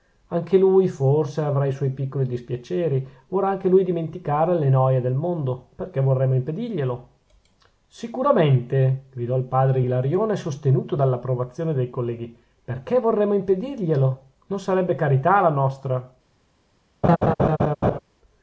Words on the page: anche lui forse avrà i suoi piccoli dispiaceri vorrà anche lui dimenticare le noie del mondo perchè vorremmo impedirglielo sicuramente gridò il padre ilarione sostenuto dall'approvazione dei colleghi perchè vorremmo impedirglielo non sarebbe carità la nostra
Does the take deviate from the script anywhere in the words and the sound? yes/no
yes